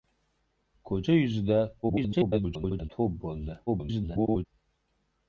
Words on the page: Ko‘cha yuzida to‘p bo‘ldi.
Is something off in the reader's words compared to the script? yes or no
yes